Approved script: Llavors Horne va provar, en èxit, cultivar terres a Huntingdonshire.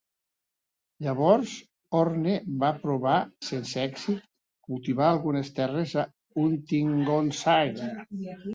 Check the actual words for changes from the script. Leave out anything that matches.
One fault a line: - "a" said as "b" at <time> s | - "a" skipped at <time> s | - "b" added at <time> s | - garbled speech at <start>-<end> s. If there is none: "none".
- "en" said as "sense" at 3.5 s
- "algunes" added at 5.1 s